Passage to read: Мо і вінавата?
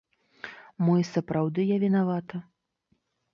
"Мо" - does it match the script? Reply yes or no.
yes